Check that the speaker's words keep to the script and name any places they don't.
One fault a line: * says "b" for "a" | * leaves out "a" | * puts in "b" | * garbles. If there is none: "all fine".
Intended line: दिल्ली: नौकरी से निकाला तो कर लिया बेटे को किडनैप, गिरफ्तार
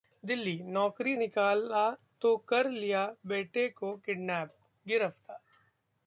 * leaves out "से"